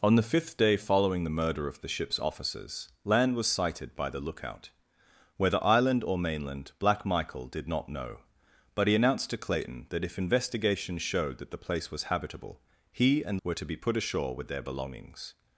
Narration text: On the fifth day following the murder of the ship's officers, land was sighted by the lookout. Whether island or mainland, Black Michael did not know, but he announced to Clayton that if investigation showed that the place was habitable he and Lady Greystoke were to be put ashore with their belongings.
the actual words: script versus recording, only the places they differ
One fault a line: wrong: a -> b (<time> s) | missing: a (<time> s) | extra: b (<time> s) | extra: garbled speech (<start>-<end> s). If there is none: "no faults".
missing: Lady Greystoke (13.4 s)